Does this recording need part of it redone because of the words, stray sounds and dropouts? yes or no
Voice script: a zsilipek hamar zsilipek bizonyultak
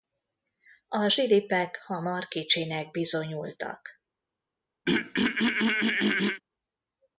yes